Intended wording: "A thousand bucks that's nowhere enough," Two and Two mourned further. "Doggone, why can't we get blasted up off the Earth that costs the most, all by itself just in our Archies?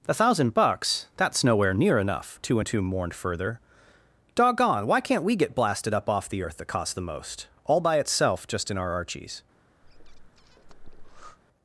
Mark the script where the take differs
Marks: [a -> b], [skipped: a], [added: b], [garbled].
"A thousand bucks that's nowhere [added: near] enough," Two and Two mourned further. "Doggone, why can't we get blasted up off the Earth that costs the most, all by itself just in our Archies?